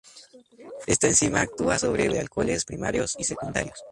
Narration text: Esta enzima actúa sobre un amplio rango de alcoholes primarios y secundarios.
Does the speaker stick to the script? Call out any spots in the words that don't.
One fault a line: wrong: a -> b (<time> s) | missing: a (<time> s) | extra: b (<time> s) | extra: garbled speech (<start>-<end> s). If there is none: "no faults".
missing: un amplio rango (2.1 s)